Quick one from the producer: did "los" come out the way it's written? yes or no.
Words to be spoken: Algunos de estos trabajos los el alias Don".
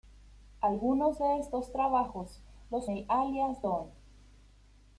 yes